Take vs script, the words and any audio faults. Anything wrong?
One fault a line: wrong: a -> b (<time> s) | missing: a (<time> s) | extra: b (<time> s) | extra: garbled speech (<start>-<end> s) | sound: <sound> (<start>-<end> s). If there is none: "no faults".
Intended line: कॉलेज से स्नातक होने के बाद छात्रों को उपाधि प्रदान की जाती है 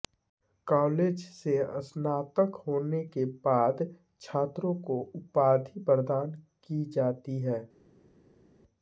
no faults